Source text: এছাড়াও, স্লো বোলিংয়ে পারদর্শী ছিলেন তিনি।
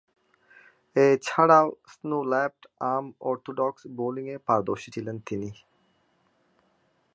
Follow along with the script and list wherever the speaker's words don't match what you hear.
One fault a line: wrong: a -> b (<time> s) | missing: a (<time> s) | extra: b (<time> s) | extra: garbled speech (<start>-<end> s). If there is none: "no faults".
extra: লেফট আর্ম অর্থোডক্স (2.3 s)